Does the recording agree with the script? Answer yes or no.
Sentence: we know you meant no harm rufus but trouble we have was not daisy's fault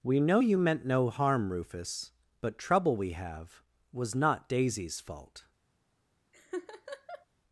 yes